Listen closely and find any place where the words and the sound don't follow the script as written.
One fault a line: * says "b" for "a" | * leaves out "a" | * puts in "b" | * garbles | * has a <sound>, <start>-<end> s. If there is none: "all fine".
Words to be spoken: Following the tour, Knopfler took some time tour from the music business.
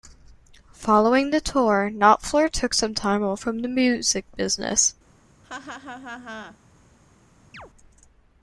* says "off" for "tour"
* has a laugh, 5.4-6.6 s
* has a chirp, 7.5-7.7 s